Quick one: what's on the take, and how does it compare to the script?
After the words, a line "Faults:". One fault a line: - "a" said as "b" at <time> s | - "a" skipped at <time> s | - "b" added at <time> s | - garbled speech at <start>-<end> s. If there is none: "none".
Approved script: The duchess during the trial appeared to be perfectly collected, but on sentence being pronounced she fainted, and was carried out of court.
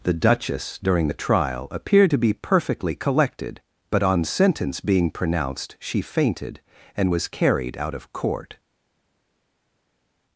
The duchess during the trial appeared to be perfectly collected, but on sentence being pronounced she fainted, and was carried out of court.
Faults:
none